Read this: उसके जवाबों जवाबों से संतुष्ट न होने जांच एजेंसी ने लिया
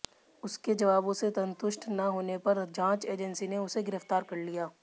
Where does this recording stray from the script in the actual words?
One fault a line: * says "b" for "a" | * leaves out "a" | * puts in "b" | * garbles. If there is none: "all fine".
* leaves out "जवाबों"
* puts in "पर"
* puts in "उसे गिरफ्तार कर"